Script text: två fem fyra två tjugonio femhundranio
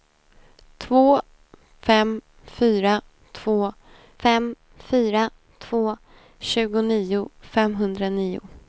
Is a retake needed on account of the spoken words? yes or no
yes